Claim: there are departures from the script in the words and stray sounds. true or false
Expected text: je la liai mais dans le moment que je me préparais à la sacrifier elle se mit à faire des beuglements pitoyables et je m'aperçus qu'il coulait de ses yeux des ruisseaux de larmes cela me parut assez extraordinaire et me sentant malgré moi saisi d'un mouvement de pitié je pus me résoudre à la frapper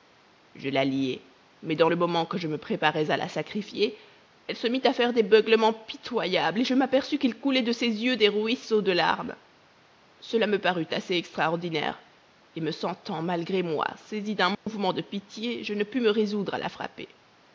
true